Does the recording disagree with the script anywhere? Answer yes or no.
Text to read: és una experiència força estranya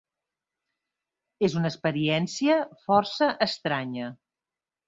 no